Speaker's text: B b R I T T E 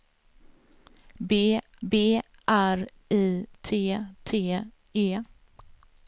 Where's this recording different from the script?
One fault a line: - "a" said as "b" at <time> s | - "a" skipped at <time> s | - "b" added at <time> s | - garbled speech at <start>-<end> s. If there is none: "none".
none